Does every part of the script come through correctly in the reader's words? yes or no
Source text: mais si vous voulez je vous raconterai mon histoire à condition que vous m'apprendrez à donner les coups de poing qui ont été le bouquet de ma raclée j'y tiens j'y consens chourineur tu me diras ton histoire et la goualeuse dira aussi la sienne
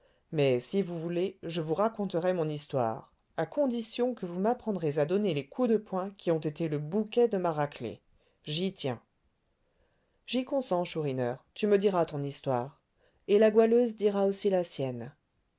yes